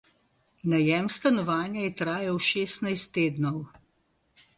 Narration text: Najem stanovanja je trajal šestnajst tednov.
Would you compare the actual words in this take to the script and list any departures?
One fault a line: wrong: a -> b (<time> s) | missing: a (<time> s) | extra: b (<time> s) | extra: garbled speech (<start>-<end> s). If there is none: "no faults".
no faults